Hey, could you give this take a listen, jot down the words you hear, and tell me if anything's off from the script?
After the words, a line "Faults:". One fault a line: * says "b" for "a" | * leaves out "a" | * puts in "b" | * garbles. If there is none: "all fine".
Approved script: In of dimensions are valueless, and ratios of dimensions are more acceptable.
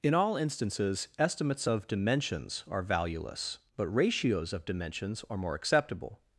In all instances, estimates of dimensions are valueless, but ratios of dimensions are more acceptable.
Faults:
* puts in "all instances estimates"
* says "but" for "and"